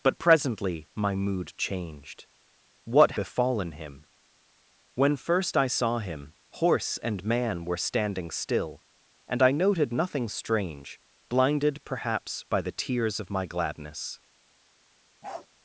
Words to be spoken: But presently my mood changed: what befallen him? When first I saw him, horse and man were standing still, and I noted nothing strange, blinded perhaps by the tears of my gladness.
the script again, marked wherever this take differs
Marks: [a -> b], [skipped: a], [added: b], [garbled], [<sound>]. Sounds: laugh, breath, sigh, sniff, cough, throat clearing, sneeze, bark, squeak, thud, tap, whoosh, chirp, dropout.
But presently my mood changed: what befallen him? When first I saw him, horse and man were standing still, and I noted nothing strange, blinded perhaps by the tears of my gladness. [bark]